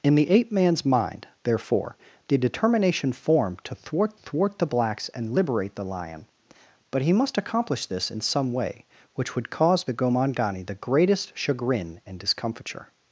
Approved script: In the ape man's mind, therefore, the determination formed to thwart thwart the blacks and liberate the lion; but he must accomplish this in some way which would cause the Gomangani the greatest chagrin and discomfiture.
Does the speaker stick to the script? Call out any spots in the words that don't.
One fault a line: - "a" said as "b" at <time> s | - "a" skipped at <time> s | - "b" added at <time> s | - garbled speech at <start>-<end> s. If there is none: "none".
none